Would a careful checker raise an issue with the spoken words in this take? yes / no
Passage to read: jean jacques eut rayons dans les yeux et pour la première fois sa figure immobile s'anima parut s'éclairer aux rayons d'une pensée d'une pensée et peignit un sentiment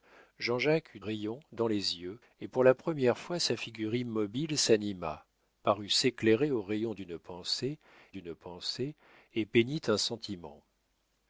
no